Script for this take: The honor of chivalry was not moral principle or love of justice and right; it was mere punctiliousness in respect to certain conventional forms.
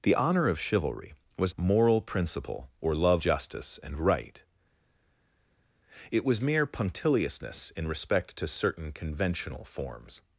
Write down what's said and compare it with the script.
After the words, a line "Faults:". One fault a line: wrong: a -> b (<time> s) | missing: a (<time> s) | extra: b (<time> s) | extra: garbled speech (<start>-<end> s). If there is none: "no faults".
The honor of chivalry was moral principle or love justice and right; it was mere punctiliousness in respect to certain conventional forms.
Faults:
missing: not (1.5 s)
missing: of (3.2 s)